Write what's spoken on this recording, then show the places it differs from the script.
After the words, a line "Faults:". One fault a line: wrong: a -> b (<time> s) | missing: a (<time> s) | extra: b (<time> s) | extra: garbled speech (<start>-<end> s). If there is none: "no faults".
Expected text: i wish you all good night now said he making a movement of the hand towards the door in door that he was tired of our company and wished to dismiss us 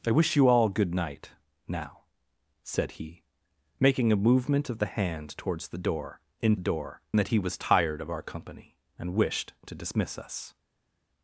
i wish you all good night now said he making a movement of the hand towards the door in door that he was tired of our company and wished to dismiss us
Faults:
no faults